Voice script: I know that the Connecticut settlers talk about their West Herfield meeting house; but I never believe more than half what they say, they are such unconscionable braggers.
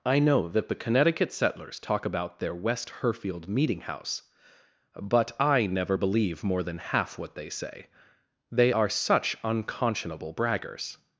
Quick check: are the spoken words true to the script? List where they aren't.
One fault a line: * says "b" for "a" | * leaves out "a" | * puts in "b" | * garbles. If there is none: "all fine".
all fine